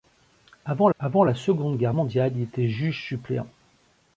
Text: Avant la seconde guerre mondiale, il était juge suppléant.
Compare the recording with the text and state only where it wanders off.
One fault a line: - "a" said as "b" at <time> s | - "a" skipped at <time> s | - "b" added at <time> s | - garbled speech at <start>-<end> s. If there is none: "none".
- "avant" added at 1.0 s